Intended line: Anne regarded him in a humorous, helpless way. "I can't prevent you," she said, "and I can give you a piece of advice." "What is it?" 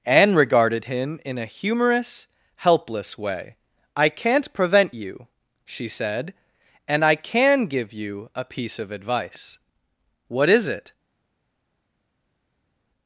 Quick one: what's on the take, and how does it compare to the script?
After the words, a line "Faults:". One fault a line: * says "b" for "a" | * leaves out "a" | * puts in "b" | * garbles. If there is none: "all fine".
Anne regarded him in a humorous, helpless way. "I can't prevent you," she said, "and I can give you a piece of advice." "What is it?"
Faults:
all fine